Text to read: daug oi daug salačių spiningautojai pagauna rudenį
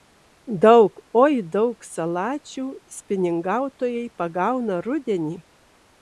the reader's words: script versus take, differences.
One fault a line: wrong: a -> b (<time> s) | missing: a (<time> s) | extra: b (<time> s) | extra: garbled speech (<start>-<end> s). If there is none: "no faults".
no faults